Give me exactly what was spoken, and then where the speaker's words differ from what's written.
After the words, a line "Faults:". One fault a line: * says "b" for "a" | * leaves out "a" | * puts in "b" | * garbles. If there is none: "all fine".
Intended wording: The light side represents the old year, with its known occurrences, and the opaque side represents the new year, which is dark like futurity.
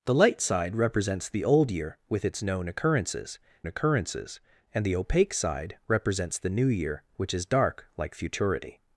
The light side represents the old year, with its known occurrences occurrences, and the opaque side represents the new year, which is dark like futurity.
Faults:
* puts in "occurrences"